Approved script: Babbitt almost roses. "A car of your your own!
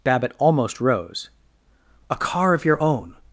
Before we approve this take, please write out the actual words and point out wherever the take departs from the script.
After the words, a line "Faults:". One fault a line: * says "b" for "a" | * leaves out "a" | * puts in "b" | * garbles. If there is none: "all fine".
Babbitt almost rose. "A car of your own!
Faults:
* says "rose" for "roses"
* leaves out "your"